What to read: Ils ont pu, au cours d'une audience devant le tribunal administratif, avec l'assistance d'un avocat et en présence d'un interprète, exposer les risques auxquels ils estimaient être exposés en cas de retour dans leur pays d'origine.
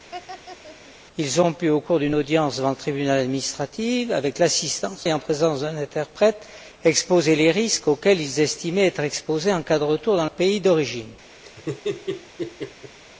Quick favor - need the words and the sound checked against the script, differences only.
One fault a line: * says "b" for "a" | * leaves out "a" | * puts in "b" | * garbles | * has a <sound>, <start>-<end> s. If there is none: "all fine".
* has a laugh, 0.1-1.0 s
* leaves out "d'un avocat"
* leaves out "leur"
* has a laugh, 11.4-13.0 s